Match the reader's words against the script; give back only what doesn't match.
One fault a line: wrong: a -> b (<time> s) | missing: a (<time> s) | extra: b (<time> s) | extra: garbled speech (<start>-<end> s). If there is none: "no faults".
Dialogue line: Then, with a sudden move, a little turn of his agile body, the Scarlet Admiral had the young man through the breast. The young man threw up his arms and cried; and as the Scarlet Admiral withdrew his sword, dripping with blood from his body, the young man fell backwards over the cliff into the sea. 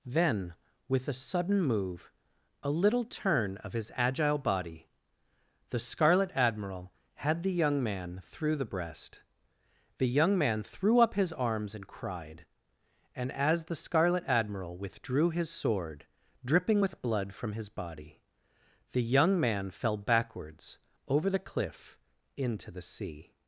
no faults